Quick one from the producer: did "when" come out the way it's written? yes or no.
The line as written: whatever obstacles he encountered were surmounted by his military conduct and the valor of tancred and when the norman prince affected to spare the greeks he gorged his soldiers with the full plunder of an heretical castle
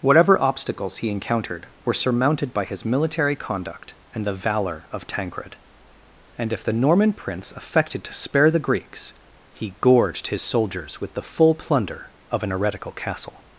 no